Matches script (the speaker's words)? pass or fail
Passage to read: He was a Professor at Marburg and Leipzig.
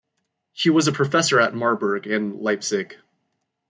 pass